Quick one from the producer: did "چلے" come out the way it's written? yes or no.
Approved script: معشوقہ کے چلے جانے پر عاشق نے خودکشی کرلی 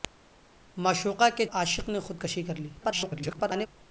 no